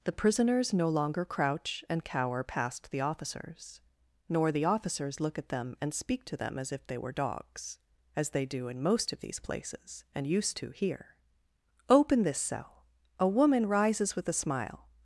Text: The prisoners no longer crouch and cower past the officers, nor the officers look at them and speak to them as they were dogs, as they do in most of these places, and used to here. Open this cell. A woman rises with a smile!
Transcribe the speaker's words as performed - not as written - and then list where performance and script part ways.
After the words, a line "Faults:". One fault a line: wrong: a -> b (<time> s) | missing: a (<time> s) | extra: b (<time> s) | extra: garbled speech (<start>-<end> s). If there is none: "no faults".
The prisoners no longer crouch and cower past the officers, nor the officers look at them and speak to them as if they were dogs, as they do in most of these places, and used to here. Open this cell. A woman rises with a smile!
Faults:
extra: if (6.7 s)